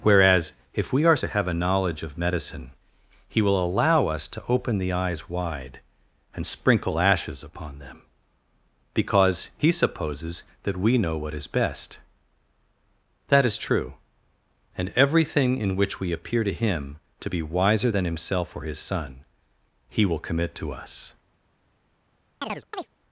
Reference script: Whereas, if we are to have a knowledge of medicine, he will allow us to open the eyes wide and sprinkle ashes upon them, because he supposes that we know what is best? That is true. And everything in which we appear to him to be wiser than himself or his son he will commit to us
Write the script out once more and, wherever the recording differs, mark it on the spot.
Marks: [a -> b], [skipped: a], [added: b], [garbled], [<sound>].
Whereas, if we are to have a knowledge of medicine, he will allow us to open the eyes wide and sprinkle ashes upon them, because he supposes that we know what is best? That is true. And everything in which we appear to him to be wiser than himself or his son he will commit to us [chirp]